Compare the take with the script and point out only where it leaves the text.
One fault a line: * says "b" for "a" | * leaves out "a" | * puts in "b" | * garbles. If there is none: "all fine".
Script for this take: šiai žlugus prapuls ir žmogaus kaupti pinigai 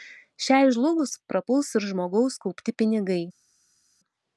all fine